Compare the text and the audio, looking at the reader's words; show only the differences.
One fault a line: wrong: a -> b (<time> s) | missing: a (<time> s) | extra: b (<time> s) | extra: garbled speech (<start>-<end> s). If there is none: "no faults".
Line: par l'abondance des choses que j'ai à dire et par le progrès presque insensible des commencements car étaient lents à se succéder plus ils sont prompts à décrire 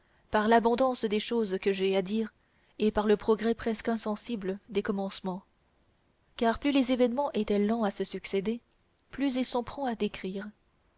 extra: plus les événements (6.6 s)